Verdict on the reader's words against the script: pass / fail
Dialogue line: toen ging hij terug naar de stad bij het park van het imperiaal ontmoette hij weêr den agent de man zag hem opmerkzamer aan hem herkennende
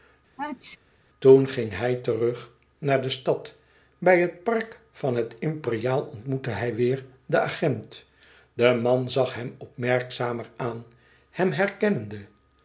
pass